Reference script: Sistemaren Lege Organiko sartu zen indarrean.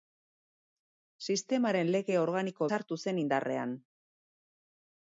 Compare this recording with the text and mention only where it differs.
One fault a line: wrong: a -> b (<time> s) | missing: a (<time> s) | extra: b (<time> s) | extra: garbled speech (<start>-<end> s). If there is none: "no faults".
no faults